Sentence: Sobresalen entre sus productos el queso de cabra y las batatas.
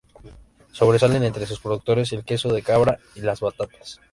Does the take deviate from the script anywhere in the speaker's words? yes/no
no